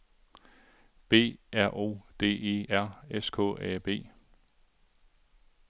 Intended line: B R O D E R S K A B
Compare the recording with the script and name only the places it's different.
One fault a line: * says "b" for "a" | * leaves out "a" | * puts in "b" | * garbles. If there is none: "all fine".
all fine